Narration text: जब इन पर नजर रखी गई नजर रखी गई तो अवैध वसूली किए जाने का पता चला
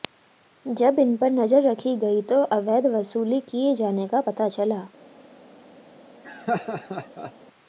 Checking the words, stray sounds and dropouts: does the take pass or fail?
fail